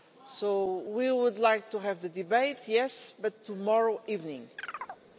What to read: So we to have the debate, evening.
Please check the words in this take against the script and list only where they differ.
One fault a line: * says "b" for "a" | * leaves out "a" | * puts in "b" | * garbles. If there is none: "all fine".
* puts in "would like"
* puts in "yes but tomorrow"